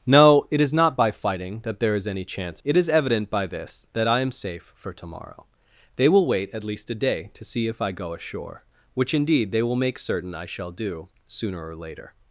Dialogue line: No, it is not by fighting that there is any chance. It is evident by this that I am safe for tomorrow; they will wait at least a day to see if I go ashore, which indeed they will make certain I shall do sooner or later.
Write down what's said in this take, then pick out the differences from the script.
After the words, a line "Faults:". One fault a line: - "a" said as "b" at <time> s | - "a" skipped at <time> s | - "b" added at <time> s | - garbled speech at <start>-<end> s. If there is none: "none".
No, it is not by fighting that there is any chance. It is evident by this that I am safe for tomorrow; they will wait at least a day to see if I go ashore, which indeed they will make certain I shall do sooner or later.
Faults:
none